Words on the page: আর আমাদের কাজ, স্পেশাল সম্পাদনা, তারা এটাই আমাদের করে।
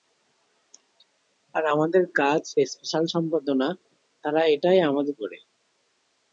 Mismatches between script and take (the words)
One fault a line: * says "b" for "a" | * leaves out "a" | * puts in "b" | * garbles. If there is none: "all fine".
all fine